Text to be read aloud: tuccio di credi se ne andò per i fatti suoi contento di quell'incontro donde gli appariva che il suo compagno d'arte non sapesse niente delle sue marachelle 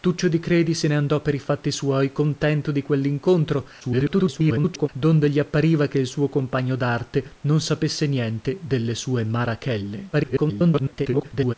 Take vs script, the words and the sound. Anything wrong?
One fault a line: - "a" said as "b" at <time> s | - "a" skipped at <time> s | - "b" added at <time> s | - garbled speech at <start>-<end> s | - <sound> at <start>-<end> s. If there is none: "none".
- garbled speech at 3.8-4.9 s
- garbled speech at 10.1-11.5 s